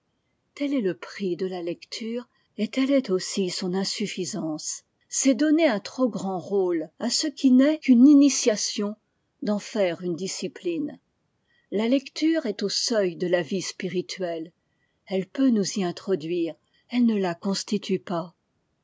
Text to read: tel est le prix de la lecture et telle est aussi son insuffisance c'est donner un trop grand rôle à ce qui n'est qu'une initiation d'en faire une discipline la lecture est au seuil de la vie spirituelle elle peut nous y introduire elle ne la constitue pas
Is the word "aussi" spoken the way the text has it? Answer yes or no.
yes